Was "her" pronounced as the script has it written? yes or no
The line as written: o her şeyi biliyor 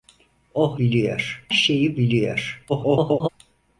no